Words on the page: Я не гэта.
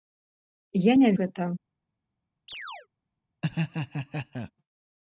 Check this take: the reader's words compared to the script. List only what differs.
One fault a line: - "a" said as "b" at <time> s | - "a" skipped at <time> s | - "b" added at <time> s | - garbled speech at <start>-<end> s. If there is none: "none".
none